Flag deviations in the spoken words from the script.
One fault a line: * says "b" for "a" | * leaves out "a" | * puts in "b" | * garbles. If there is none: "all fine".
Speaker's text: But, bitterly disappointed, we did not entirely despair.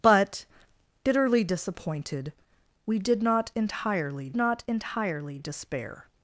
* puts in "not entirely"